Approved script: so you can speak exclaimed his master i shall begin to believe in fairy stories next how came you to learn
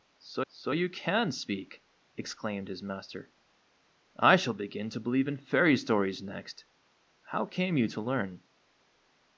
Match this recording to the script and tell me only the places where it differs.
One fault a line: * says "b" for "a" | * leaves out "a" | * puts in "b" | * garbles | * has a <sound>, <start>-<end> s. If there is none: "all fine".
* puts in "so"